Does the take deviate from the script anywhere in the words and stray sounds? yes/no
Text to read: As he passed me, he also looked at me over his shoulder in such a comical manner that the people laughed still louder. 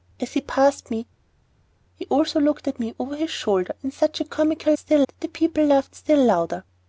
yes